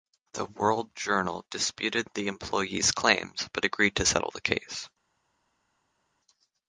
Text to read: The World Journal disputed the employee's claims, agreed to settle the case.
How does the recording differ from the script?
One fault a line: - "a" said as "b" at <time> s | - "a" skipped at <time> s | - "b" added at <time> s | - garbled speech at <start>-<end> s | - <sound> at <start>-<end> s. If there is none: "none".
- "but" added at 3.5 s